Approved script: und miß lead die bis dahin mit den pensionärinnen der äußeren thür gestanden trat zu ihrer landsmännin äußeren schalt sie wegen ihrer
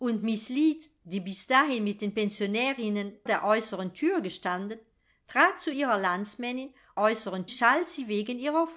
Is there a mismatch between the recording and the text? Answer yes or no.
no